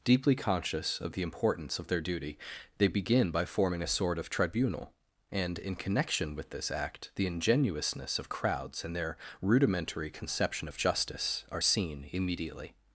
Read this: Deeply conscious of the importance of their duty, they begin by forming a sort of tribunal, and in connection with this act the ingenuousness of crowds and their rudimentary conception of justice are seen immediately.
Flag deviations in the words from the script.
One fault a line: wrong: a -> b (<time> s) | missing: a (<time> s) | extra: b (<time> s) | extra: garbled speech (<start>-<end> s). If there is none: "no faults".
no faults